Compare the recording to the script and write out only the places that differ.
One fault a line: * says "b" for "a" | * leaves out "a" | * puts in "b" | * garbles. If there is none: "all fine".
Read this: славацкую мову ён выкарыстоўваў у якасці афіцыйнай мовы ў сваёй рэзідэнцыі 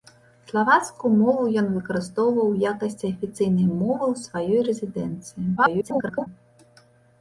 * garbles